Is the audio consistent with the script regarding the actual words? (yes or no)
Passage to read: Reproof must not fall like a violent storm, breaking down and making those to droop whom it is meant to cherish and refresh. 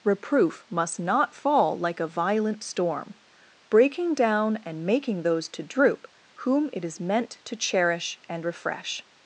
yes